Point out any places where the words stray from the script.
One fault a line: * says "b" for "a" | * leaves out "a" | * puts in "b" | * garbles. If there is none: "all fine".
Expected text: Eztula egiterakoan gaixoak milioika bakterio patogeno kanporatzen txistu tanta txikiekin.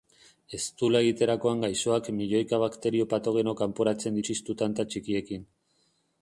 all fine